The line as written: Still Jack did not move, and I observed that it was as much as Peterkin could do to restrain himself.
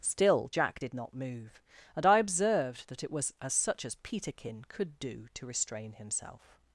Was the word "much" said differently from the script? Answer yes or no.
yes